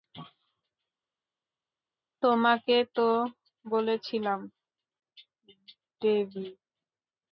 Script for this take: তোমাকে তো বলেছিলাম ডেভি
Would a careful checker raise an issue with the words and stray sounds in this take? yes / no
no